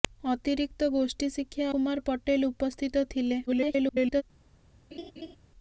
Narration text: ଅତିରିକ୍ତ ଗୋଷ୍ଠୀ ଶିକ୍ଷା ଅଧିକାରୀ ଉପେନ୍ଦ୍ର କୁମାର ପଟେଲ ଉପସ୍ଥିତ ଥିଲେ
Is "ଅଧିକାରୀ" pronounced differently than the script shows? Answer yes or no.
yes